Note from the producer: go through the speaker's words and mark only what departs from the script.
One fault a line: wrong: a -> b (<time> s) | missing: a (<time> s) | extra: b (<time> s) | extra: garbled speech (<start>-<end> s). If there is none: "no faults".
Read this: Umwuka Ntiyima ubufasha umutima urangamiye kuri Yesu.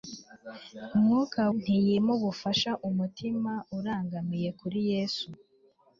no faults